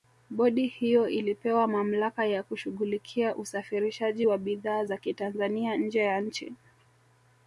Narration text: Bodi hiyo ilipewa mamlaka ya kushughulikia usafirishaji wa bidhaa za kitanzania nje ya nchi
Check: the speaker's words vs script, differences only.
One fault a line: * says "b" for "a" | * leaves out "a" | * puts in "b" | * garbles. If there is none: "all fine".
all fine